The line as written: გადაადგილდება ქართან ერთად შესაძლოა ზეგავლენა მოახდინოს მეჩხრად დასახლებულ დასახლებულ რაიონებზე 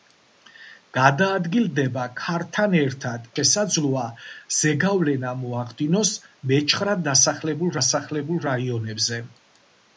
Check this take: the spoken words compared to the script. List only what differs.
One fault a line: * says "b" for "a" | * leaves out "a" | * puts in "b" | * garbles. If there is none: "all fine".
all fine